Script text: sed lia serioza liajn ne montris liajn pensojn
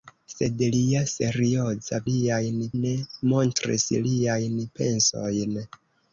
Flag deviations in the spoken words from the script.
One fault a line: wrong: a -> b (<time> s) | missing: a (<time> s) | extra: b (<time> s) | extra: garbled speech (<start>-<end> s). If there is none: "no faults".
no faults